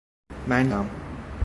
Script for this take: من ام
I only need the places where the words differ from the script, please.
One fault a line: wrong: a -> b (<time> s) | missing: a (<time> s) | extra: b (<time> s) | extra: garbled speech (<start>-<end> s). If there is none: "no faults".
no faults